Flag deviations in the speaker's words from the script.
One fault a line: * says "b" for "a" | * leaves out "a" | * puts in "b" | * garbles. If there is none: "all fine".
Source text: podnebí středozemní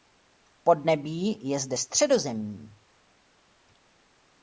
* puts in "je zde"